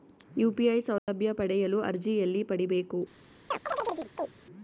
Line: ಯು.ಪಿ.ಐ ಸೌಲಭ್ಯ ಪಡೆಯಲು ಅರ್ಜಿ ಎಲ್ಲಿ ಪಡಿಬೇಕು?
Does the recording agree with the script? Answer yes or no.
yes